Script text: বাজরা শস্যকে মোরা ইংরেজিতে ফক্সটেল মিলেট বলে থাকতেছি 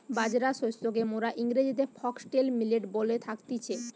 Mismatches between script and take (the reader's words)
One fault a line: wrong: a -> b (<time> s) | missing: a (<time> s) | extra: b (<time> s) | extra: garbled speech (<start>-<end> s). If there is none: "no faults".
no faults